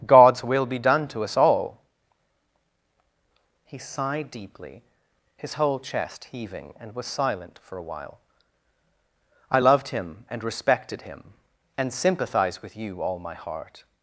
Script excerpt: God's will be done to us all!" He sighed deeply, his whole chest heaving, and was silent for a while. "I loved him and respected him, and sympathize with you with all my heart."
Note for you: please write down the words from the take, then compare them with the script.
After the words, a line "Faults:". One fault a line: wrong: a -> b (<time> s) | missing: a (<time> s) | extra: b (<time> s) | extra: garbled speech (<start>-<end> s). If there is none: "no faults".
God's will be done to us all!" He sighed deeply, his whole chest heaving, and was silent for a while. "I loved him and respected him, and sympathize with you all my heart."
Faults:
missing: with (13.0 s)